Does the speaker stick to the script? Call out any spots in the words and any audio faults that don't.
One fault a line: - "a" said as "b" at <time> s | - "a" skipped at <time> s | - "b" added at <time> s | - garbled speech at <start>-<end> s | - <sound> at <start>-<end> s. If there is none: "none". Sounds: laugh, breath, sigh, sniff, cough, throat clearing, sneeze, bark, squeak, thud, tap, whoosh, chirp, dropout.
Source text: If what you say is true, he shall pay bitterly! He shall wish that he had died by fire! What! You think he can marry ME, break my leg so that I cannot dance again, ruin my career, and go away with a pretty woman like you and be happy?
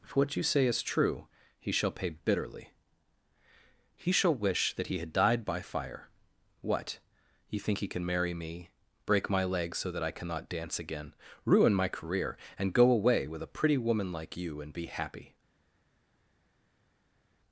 none